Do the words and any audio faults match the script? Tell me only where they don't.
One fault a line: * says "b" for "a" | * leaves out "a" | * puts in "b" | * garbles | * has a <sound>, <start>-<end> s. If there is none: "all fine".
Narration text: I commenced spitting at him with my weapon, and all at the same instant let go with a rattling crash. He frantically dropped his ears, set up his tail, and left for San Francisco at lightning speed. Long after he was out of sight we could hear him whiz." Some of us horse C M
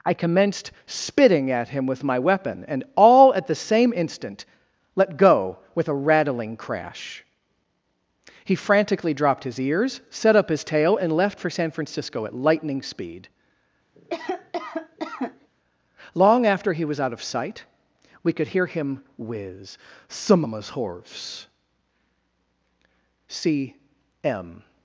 * has a cough, 13.9-15.5 s